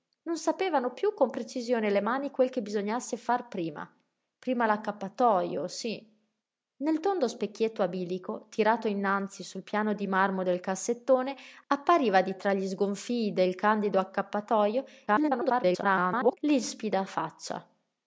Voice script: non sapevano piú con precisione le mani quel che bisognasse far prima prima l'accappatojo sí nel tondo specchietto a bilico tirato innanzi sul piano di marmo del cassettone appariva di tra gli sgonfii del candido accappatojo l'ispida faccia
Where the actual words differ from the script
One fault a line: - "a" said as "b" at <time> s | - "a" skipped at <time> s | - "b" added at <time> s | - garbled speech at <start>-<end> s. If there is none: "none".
- garbled speech at 15.1-16.4 s